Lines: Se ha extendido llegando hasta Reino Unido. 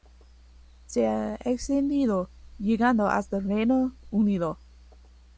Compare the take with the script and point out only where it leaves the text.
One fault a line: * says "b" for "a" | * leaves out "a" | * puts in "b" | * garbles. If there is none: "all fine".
all fine